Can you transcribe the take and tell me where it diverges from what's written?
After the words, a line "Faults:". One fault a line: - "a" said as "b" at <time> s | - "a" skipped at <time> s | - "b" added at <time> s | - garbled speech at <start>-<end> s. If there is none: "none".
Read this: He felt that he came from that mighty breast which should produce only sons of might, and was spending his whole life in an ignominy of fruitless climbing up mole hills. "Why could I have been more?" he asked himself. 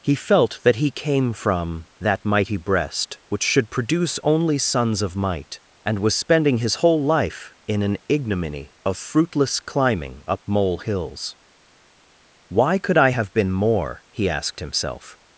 He felt that he came from that mighty breast which should produce only sons of might, and was spending his whole life in an ignominy of fruitless climbing up mole hills. "Why could I have been more?" he asked himself.
Faults:
none